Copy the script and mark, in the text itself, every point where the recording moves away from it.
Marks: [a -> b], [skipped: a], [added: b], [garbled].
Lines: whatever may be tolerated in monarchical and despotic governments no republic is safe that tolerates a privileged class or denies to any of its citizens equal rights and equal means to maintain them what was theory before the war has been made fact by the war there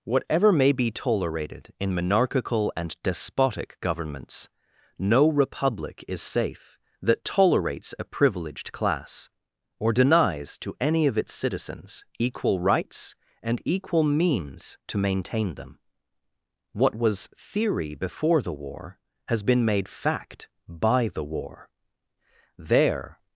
whatever may be tolerated in monarchical and despotic governments no republic is safe that tolerates a privileged class or denies to any of its citizens equal rights and equal means to maintain them what was theory before the war has been made fact by the war there